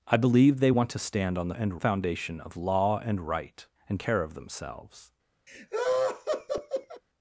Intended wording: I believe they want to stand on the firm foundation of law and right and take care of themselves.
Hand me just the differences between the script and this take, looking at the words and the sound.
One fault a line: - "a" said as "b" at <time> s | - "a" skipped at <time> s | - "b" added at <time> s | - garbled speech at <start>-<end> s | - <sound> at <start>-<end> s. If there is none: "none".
- "firm" said as "and" at 1.5 s
- "take" skipped at 4.0 s
- laugh at 5.5-7.0 s